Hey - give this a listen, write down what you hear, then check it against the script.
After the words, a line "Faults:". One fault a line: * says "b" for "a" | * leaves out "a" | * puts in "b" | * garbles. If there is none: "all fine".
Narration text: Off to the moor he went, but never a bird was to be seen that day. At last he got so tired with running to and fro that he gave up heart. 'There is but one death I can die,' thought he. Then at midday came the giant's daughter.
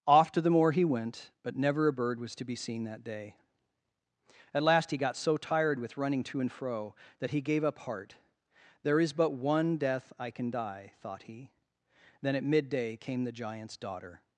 Off to the moor he went, but never a bird was to be seen that day. At last he got so tired with running to and fro that he gave up heart. 'There is but one death I can die,' thought he. Then at midday came the giant's daughter.
Faults:
all fine